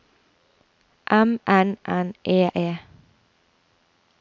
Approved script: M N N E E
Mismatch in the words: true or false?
false